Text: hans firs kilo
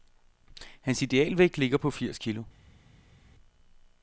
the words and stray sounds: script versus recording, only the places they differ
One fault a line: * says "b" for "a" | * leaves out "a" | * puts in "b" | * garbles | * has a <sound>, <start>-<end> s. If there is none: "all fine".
* puts in "idealvægt ligger på"